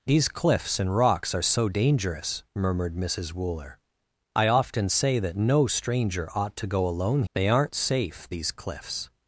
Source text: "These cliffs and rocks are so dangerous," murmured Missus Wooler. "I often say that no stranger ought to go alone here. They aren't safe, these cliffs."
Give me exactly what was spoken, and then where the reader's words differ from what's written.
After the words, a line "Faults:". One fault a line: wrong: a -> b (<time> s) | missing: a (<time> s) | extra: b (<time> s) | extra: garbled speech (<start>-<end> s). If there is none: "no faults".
"These cliffs and rocks are so dangerous," murmured Missus Wooler. "I often say that no stranger ought to go alone. They aren't safe, these cliffs."
Faults:
missing: here (7.2 s)